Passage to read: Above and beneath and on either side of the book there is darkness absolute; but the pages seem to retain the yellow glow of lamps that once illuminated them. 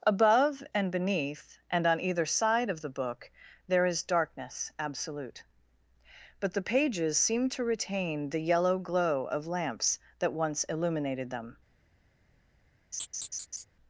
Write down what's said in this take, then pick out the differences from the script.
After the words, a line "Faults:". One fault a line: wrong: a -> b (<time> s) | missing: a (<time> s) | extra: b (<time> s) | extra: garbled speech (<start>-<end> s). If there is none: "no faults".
Above and beneath and on either side of the book there is darkness absolute; but the pages seem to retain the yellow glow of lamps that once illuminated them.
Faults:
no faults